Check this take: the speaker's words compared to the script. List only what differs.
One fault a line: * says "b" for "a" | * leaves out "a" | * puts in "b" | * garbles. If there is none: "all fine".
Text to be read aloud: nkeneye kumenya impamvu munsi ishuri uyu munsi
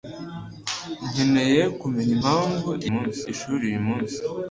all fine